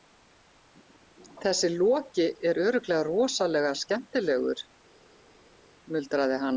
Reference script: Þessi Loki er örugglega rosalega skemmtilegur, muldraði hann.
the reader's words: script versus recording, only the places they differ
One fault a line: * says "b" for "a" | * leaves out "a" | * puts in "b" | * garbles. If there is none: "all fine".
all fine